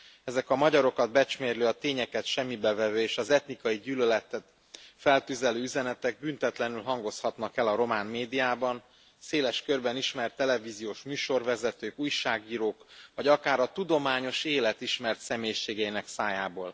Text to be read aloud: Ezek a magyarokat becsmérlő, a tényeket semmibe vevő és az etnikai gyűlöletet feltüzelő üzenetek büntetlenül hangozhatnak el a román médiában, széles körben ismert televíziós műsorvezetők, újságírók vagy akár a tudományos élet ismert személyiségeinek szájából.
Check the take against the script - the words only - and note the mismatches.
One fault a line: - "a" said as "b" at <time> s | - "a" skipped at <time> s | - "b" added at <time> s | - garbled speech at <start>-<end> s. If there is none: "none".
none